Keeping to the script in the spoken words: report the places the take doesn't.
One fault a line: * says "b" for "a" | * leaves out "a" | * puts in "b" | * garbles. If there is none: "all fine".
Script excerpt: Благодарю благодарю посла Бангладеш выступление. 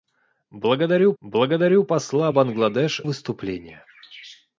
all fine